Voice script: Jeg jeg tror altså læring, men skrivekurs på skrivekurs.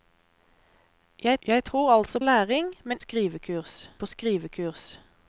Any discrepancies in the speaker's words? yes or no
no